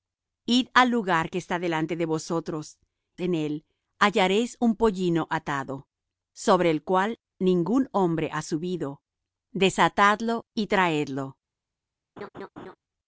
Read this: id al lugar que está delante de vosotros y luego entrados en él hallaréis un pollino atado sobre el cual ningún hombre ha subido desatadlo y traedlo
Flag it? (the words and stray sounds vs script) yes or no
yes